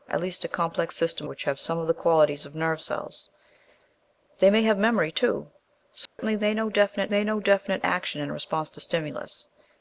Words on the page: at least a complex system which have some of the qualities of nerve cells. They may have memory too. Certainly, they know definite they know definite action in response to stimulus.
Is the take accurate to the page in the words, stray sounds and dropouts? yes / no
no